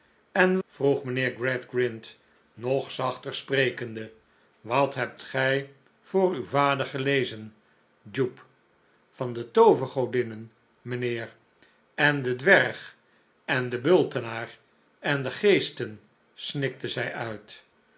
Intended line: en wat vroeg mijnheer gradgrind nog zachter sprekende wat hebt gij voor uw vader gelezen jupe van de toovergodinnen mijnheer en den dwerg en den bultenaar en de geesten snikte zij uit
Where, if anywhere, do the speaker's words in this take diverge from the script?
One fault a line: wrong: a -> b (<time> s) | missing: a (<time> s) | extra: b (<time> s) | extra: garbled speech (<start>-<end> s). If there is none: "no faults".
missing: wat (0.6 s)